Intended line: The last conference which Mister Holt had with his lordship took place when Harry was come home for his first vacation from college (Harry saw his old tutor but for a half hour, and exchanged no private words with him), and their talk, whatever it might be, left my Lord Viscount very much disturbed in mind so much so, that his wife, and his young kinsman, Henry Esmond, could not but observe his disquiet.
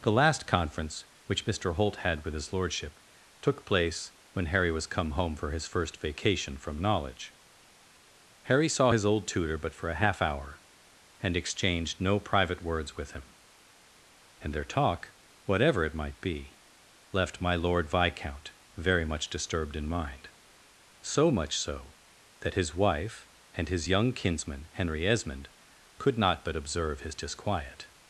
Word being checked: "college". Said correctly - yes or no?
no